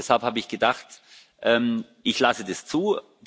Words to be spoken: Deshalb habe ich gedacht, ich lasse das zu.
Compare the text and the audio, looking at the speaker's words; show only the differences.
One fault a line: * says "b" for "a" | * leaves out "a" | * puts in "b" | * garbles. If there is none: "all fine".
all fine